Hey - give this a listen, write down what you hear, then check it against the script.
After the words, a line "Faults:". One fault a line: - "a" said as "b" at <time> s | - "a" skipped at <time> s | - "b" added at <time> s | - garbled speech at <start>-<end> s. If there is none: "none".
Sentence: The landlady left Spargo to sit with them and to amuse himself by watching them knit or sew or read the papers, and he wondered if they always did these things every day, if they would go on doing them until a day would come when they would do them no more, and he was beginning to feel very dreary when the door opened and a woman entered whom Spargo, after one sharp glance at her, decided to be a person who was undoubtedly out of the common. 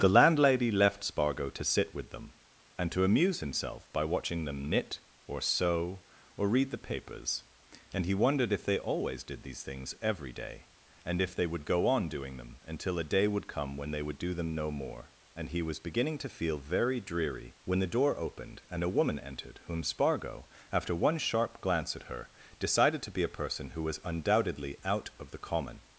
The landlady left Spargo to sit with them and to amuse himself by watching them knit or sew or read the papers, and he wondered if they always did these things every day, and if they would go on doing them until a day would come when they would do them no more, and he was beginning to feel very dreary when the door opened and a woman entered whom Spargo, after one sharp glance at her, decided to be a person who was undoubtedly out of the common.
Faults:
- "and" added at 11.0 s